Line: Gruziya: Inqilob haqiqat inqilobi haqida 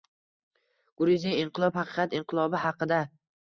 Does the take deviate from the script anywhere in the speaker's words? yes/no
no